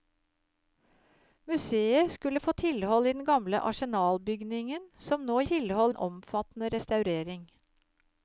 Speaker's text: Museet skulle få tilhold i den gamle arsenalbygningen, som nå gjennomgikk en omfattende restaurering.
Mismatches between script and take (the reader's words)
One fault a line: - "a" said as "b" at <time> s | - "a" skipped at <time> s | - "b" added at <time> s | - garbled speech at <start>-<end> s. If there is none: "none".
- "gjennomgikk" said as "tilhold" at 5.5 s